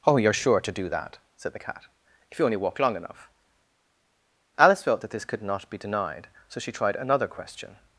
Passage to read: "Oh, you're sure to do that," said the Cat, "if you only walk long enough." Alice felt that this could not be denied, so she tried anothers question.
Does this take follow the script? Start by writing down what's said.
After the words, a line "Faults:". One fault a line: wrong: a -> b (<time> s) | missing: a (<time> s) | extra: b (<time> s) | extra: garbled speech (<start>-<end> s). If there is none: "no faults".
"Oh, you're sure to do that," said the Cat, "if you only walk long enough." Alice felt that this could not be denied, so she tried another question.
Faults:
wrong: anothers -> another (7.0 s)